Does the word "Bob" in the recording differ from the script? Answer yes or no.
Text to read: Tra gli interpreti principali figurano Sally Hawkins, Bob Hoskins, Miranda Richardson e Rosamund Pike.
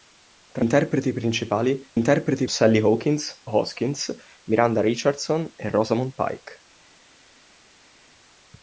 yes